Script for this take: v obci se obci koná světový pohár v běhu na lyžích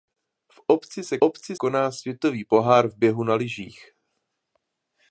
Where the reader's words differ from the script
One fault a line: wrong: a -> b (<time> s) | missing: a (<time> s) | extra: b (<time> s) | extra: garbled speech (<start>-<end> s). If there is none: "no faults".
no faults